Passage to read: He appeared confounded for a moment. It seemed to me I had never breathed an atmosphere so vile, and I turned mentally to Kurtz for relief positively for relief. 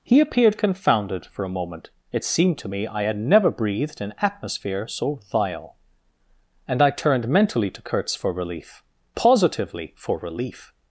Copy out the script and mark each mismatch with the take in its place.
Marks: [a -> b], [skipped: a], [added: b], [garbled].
He appeared confounded for a moment. It seemed to me I had never breathed an atmosphere so vile, and I turned mentally to Kurtz for relief positively for relief.